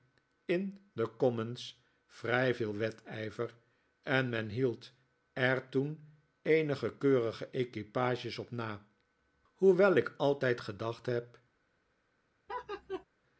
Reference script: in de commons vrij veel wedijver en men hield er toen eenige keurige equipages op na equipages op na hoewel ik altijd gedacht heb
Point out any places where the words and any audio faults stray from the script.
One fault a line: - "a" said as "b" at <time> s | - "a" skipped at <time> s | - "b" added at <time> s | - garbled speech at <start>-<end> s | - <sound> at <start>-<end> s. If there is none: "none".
- "equipages op na" skipped at 8.9 s
- laugh at 12.5-13.0 s